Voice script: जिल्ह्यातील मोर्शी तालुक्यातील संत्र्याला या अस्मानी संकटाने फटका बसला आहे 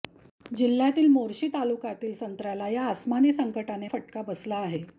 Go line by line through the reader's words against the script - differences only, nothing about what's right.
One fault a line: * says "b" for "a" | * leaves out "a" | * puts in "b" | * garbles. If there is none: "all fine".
all fine